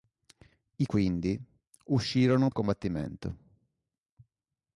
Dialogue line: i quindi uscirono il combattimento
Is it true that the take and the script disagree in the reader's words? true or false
false